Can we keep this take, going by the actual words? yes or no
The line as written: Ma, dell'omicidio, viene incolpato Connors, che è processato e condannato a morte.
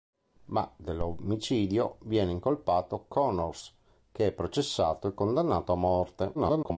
no